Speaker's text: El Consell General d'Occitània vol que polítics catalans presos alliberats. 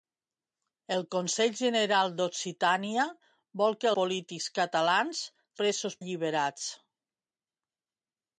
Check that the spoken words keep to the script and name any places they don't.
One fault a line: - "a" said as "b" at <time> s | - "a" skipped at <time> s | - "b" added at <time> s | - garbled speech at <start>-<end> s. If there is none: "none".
none